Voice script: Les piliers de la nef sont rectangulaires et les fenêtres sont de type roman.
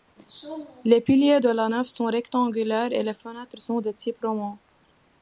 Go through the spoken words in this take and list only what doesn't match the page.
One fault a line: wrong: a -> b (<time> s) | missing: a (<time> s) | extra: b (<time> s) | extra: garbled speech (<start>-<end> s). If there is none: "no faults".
no faults